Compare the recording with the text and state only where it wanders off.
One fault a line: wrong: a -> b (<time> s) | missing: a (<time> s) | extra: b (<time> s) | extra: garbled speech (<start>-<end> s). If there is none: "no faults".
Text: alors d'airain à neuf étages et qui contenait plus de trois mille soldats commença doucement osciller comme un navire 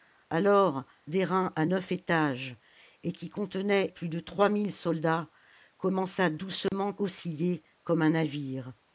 no faults